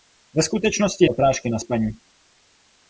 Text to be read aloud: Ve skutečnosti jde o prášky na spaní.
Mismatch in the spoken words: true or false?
true